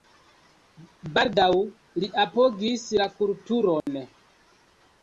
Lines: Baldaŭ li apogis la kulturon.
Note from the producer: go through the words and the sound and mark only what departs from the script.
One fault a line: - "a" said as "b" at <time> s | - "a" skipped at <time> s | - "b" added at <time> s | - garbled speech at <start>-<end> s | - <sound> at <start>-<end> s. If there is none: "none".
- dropout at 3.8-3.9 s